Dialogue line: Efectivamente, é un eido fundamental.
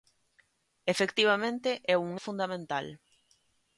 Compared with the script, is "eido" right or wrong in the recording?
wrong